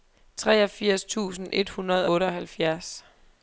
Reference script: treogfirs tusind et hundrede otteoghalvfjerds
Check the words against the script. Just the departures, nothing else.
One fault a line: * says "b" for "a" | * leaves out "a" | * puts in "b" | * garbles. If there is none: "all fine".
all fine